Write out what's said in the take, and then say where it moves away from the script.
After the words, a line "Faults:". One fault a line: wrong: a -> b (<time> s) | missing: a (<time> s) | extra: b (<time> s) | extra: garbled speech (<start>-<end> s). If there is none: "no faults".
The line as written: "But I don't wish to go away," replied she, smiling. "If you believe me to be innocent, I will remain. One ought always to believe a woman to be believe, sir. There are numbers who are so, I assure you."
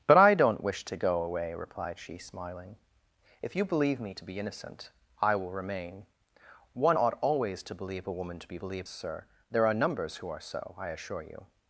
"But I don't wish to go away," replied she, smiling. "If you believe me to be innocent, I will remain. One ought always to believe a woman to be believe, sir. There are numbers who are so, I assure you."
Faults:
no faults